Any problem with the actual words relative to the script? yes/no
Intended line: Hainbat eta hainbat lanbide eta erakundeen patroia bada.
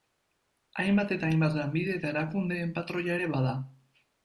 yes